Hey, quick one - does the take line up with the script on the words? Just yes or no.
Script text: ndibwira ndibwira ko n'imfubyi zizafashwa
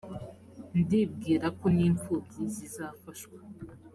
no